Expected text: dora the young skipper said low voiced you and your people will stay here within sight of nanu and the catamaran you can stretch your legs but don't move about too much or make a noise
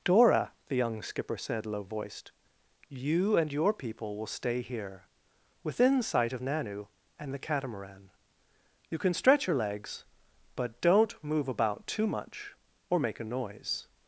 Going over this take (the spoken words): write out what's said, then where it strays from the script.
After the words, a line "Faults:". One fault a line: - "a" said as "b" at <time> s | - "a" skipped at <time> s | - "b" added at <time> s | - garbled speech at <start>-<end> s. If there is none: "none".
dora the young skipper said low voiced you and your people will stay here within sight of nanu and the catamaran you can stretch your legs but don't move about too much or make a noise
Faults:
none